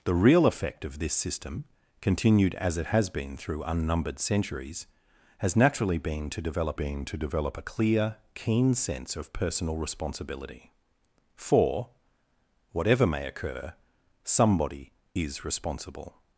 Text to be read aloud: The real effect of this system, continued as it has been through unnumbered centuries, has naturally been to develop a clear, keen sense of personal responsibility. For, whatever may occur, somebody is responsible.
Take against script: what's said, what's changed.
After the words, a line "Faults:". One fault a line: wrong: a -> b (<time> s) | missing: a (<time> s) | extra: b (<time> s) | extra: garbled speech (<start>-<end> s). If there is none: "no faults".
The real effect of this system, continued as it has been through unnumbered centuries, has naturally been to develop been to develop a clear, keen sense of personal responsibility. For, whatever may occur, somebody is responsible.
Faults:
extra: been to develop (6.7 s)